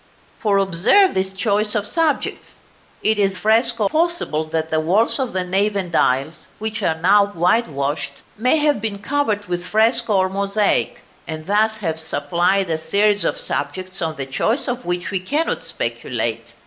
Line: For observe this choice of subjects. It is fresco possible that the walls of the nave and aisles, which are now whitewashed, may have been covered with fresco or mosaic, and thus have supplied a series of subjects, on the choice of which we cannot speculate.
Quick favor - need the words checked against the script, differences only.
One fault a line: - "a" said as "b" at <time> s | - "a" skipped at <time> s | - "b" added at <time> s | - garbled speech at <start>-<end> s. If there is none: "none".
none